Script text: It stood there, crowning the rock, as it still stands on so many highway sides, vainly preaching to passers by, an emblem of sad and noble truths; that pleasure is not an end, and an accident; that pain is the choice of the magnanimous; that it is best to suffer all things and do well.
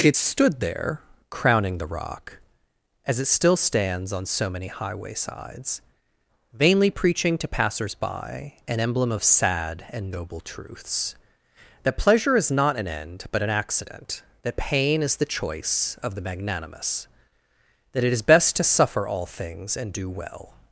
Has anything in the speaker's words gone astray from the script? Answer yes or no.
yes